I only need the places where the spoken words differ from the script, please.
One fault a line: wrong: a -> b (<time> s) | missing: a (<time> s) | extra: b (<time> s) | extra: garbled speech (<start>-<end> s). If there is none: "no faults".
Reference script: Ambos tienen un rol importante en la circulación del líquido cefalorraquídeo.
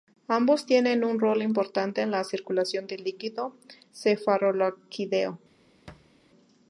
no faults